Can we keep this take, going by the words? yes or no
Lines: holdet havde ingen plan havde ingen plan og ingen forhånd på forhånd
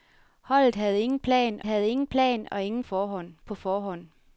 yes